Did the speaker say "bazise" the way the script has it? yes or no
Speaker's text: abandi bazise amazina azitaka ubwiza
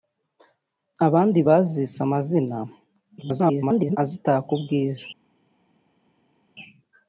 yes